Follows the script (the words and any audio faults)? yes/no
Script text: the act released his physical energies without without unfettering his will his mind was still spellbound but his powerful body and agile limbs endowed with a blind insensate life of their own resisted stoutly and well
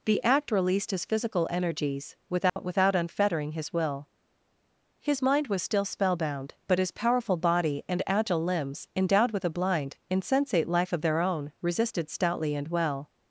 no